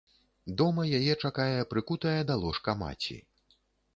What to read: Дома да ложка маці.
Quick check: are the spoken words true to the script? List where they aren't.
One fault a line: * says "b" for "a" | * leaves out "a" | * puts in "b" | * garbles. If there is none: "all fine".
* puts in "яе чакае прыкутая"